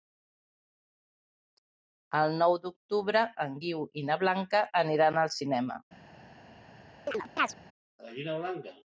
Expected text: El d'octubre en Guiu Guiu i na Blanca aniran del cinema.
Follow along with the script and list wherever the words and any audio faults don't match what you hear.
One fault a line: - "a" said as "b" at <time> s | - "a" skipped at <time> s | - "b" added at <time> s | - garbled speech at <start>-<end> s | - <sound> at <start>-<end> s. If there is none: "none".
- "nou" added at 2.4 s
- "Guiu" skipped at 3.8 s
- "del" said as "al" at 5.3 s
- chirp at 7.1-7.6 s